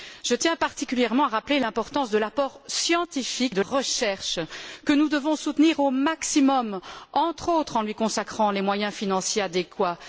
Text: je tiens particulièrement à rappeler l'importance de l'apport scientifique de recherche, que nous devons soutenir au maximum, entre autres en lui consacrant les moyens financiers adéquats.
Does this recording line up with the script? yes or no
yes